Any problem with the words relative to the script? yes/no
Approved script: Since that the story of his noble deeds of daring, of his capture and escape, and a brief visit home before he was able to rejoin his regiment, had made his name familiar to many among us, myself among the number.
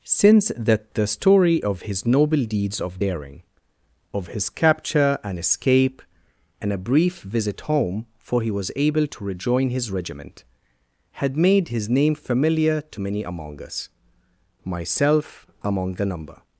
yes